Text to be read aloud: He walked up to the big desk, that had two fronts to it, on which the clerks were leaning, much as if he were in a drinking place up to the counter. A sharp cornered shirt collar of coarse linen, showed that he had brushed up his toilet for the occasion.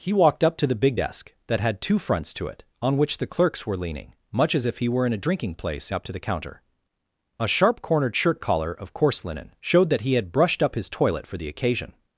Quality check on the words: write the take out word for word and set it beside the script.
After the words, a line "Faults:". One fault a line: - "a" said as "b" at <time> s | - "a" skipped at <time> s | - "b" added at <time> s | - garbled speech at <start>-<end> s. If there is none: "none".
He walked up to the big desk, that had two fronts to it, on which the clerks were leaning, much as if he were in a drinking place up to the counter. A sharp cornered shirt collar of coarse linen, showed that he had brushed up his toilet for the occasion.
Faults:
none